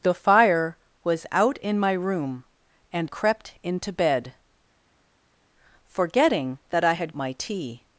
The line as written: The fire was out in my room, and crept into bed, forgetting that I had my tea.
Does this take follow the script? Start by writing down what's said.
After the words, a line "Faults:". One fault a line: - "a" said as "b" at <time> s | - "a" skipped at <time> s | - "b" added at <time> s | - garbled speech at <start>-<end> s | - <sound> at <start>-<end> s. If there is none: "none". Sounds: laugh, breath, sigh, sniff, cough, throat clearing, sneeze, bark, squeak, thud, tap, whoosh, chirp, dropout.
The fire was out in my room, and crept into bed, forgetting that I had my tea.
Faults:
none